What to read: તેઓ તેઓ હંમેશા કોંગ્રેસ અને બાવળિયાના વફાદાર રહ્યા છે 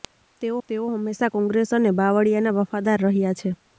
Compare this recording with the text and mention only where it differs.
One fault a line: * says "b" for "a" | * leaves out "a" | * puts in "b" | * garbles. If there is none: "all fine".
all fine